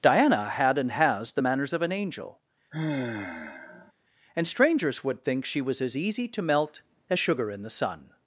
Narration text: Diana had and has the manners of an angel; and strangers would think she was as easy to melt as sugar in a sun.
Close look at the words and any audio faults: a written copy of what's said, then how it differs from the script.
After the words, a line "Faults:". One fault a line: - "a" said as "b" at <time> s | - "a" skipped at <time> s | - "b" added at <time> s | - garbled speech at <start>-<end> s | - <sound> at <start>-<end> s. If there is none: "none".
Diana had and has the manners of an angel; and strangers would think she was as easy to melt as sugar in the sun.
Faults:
- sigh at 2.7-3.9 s
- "a" said as "the" at 7.6 s